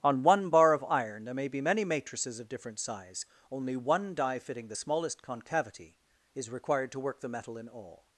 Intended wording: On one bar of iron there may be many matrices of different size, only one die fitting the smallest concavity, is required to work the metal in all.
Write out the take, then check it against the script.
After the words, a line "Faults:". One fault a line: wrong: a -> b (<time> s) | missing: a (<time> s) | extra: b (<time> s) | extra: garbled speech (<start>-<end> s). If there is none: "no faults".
On one bar of iron there may be many matrices of different size, only one die fitting the smallest concavity, is required to work the metal in all.
Faults:
no faults